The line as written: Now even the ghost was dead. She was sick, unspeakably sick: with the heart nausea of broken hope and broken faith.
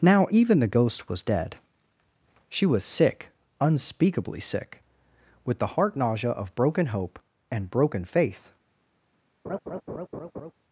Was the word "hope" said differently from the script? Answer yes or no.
no